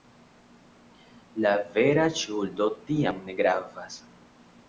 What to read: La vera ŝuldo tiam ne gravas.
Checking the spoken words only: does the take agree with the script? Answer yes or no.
yes